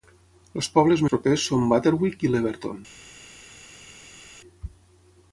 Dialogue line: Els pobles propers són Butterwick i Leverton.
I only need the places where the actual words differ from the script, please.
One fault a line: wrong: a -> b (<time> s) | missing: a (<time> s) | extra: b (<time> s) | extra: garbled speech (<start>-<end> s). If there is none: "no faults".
no faults